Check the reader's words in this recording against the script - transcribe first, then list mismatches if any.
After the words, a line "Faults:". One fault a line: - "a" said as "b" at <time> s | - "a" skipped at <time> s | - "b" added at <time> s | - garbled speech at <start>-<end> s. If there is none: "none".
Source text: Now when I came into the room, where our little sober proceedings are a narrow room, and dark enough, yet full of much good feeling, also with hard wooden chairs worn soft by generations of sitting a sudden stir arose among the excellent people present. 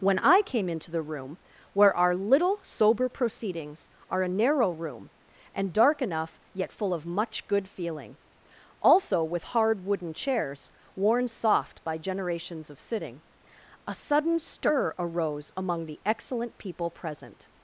when I came into the room, where our little sober proceedings are a narrow room, and dark enough, yet full of much good feeling, also with hard wooden chairs worn soft by generations of sitting a sudden stir arose among the excellent people present.
Faults:
- "Now" skipped at 0.0 s